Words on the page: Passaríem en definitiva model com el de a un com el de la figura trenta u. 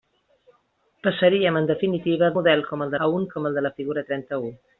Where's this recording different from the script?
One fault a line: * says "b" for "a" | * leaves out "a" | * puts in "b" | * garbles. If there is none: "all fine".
all fine